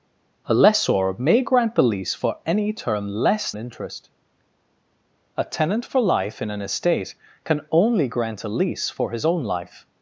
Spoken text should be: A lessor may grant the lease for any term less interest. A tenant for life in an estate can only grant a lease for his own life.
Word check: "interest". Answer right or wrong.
right